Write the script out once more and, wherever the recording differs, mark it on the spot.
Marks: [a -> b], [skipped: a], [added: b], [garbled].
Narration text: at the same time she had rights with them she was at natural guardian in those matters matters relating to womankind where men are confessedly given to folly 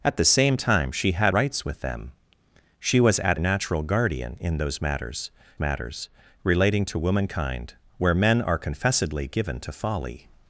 at the same time she had rights with them she was at natural guardian in those matters matters relating to womankind where men are confessedly given to folly